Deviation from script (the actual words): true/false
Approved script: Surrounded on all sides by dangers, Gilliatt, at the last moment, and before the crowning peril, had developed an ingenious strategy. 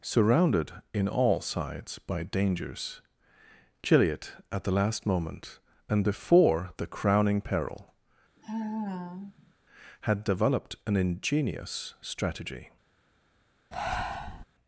true